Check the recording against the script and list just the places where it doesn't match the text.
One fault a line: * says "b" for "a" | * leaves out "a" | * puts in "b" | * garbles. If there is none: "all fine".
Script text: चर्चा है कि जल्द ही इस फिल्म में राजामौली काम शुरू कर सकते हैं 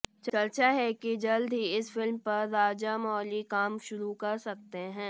* says "पर" for "में"